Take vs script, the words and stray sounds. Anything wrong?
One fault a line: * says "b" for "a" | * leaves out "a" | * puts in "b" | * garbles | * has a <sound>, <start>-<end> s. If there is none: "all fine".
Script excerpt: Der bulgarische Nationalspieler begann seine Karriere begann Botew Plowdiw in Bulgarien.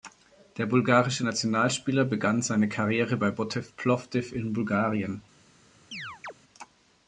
* says "bei" for "begann"
* has a chirp, 5.9-6.3 s